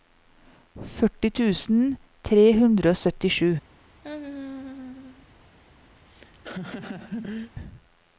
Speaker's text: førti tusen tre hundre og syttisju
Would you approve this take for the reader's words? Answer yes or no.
yes